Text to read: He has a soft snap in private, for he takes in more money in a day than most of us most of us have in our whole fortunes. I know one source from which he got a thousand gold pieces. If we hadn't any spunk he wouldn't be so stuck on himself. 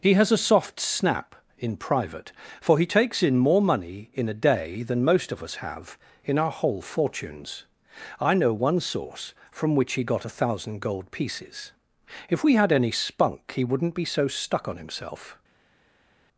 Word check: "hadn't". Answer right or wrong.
wrong